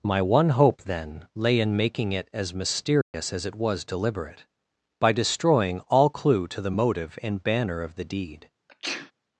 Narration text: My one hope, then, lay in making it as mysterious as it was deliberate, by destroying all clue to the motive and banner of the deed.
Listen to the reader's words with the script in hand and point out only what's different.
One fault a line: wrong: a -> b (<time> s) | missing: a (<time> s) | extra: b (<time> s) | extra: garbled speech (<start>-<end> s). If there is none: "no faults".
no faults